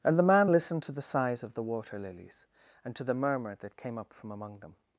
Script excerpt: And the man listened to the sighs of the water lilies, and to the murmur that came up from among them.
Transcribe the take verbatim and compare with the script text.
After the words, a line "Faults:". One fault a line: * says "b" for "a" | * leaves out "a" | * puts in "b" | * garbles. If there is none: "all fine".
And the man listened to the sighs of the water lilies, and to the murmur that came up from among them.
Faults:
all fine